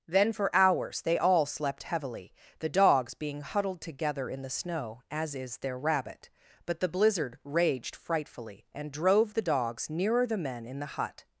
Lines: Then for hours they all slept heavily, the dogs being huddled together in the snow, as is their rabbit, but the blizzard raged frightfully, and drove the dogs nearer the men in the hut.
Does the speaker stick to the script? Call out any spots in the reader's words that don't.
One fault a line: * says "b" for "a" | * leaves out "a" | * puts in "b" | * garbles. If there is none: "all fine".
all fine